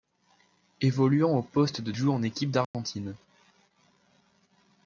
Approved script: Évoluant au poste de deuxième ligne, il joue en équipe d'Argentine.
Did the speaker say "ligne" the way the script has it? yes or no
no